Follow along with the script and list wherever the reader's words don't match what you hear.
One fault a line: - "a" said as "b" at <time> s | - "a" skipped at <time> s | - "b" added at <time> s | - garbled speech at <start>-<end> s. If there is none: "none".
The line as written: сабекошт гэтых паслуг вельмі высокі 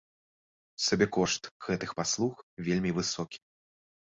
none